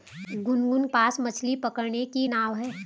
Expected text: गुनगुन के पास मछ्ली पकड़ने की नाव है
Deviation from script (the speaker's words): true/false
true